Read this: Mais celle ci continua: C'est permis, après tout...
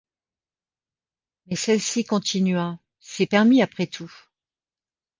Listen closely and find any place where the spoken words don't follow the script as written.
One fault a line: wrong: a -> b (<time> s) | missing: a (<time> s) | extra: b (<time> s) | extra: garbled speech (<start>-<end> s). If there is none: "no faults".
no faults